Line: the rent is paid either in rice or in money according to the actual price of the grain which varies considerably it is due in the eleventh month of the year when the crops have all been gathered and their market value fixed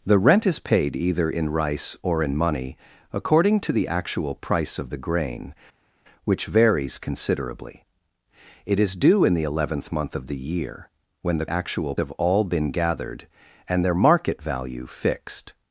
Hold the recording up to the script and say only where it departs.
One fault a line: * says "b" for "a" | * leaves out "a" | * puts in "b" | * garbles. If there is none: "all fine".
* says "actual" for "crops"